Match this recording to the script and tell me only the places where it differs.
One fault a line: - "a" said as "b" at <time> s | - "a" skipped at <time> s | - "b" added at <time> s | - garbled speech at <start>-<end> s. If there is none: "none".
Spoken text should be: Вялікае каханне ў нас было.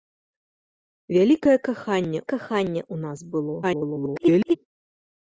- "каханне" added at 2.3 s
- garbled speech at 3.6-4.6 s